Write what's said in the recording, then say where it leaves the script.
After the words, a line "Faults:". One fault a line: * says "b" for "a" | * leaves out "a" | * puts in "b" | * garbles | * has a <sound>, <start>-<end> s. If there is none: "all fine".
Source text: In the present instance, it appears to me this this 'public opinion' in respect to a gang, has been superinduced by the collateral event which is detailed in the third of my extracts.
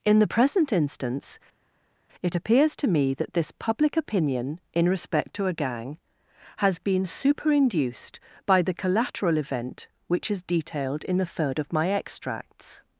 In the present instance, it appears to me that this 'public opinion' in respect to a gang, has been superinduced by the collateral event which is detailed in the third of my extracts.
Faults:
* says "that" for "this"